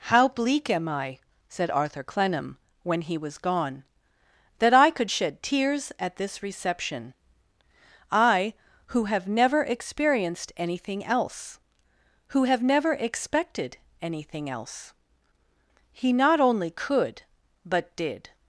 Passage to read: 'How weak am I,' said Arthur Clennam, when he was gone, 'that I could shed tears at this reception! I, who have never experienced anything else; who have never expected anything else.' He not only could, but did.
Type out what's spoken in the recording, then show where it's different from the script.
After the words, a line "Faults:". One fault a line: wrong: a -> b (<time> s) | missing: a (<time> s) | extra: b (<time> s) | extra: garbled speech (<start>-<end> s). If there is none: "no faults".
'How bleak am I,' said Arthur Clennam, when he was gone, 'that I could shed tears at this reception! I, who have never experienced anything else; who have never expected anything else.' He not only could, but did.
Faults:
wrong: weak -> bleak (0.3 s)